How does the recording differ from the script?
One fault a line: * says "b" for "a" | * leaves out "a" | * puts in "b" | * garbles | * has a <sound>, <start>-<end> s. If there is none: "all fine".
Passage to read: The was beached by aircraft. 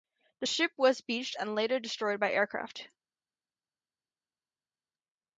* puts in "ship"
* puts in "and later destroyed"